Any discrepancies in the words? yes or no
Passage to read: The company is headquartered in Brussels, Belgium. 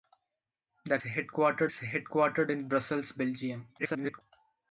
yes